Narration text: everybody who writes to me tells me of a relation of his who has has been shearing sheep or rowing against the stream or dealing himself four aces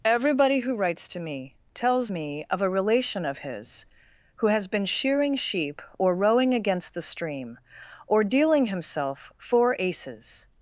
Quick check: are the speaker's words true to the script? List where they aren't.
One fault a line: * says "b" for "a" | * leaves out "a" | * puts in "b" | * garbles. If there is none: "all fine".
* leaves out "has"